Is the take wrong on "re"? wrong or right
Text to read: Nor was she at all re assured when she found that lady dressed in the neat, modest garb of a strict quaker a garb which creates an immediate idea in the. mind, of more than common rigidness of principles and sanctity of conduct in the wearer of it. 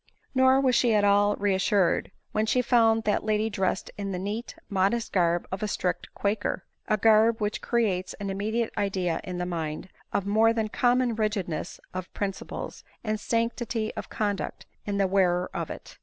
right